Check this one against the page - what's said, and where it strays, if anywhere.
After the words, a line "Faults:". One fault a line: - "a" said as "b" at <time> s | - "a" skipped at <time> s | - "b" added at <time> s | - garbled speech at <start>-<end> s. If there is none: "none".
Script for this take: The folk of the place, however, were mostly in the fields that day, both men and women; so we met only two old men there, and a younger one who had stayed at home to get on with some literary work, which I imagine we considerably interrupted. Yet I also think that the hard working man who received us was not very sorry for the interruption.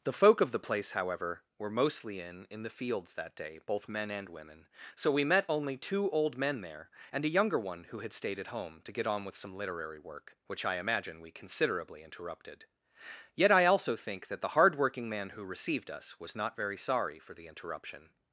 The folk of the place, however, were mostly in in the fields that day, both men and women; so we met only two old men there, and a younger one who had stayed at home to get on with some literary work, which I imagine we considerably interrupted. Yet I also think that the hard working man who received us was not very sorry for the interruption.
Faults:
- "in" added at 2.5 s